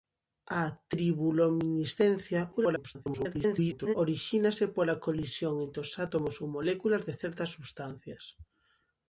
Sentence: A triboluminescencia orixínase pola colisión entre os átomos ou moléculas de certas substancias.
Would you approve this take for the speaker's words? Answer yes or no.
no